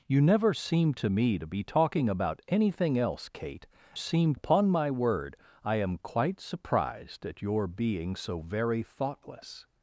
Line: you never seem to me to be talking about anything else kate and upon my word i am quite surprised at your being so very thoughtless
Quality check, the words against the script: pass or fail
fail